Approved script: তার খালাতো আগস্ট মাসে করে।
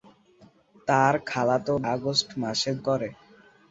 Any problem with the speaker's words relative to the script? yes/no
no